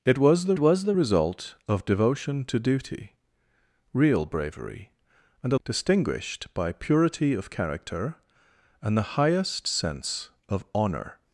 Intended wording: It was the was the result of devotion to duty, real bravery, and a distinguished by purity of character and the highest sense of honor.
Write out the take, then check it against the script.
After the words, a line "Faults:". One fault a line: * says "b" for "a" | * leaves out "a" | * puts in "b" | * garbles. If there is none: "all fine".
It was the was the result of devotion to duty, real bravery, and a distinguished by purity of character and the highest sense of honor.
Faults:
all fine